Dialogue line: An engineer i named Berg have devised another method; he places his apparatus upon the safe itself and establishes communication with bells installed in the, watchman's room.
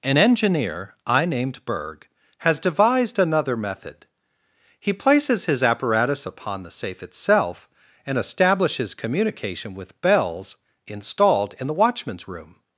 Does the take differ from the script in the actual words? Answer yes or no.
yes